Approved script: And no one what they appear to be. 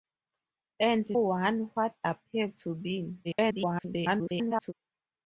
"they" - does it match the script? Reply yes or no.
no